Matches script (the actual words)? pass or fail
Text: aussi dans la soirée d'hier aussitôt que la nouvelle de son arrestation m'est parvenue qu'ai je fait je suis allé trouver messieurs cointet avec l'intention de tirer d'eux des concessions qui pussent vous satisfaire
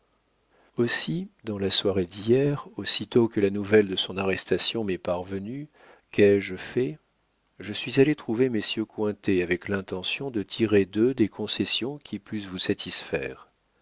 pass